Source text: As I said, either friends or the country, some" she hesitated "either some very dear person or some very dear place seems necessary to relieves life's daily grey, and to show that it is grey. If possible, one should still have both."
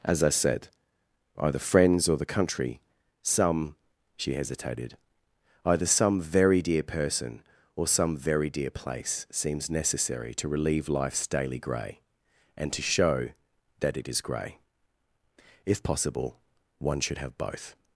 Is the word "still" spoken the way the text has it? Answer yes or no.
no